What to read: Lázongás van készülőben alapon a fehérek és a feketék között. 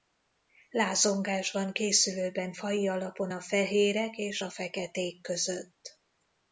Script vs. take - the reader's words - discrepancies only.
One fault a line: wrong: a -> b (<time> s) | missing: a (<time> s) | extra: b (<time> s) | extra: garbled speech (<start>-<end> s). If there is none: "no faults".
extra: faji (2.5 s)